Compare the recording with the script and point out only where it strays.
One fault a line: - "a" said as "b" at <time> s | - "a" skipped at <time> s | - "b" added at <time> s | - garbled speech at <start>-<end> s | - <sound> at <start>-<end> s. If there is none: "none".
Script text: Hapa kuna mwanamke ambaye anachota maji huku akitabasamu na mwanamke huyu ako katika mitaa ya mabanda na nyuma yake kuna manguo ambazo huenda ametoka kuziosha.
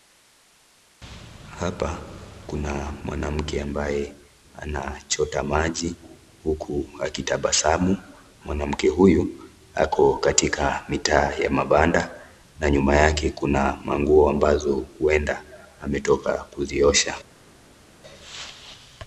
- "na" skipped at 8.0 s